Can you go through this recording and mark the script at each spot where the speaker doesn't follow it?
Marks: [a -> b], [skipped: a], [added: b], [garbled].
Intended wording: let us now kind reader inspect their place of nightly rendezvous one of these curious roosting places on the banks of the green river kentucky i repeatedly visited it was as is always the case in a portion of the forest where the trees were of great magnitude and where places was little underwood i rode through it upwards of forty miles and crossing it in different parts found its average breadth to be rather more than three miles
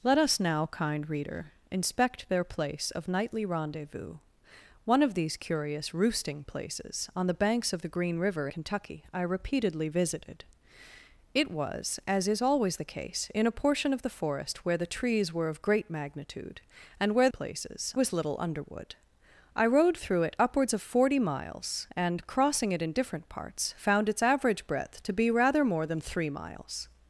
let us now kind reader inspect their place of nightly rendezvous one of these curious roosting places on the banks of the green river kentucky i repeatedly visited it was as is always the case in a portion of the forest where the trees were of great magnitude and where places was little underwood i rode through it upwards of forty miles and crossing it in different parts found its average breadth to be rather more than three miles